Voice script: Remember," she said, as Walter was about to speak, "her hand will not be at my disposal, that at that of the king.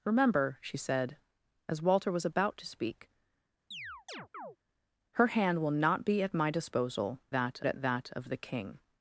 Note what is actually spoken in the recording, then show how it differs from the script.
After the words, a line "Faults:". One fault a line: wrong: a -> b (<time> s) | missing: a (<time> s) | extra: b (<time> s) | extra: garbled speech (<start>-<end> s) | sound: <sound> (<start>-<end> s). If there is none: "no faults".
Remember," she said, as Walter was about to speak, "her hand will not be at my disposal, that at that of the king.
Faults:
sound: chirp (3.7-4.6 s)